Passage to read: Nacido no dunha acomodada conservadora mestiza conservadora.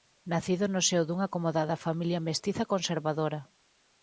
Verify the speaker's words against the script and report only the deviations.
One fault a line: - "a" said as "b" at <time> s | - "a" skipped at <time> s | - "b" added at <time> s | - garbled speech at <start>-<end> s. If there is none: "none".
- "seo" added at 0.9 s
- "conservadora" said as "familia" at 1.9 s